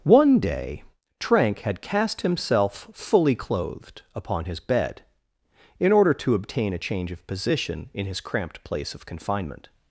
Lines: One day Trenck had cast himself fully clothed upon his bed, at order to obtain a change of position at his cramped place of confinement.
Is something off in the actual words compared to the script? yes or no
yes